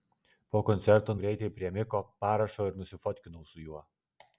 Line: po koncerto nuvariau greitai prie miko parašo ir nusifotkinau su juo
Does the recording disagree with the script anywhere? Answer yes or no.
yes